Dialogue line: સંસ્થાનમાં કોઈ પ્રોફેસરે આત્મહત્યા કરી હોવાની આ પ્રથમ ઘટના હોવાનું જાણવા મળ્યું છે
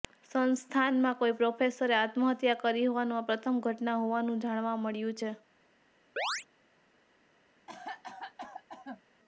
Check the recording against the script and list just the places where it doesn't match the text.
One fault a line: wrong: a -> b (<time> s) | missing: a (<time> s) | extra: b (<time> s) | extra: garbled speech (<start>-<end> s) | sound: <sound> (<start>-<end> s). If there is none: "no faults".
sound: chirp (6.2-6.5 s)
sound: cough (7.7-9.0 s)